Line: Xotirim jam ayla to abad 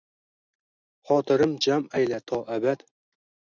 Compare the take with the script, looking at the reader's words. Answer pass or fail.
pass